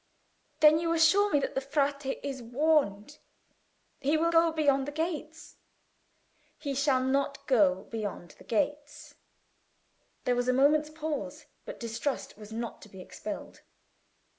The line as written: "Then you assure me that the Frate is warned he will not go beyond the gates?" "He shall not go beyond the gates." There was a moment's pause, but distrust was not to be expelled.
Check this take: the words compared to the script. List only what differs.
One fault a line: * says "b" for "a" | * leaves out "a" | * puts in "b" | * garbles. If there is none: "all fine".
* leaves out "not"